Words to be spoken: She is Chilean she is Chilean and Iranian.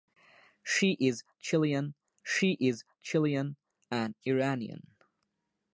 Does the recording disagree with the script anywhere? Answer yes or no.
no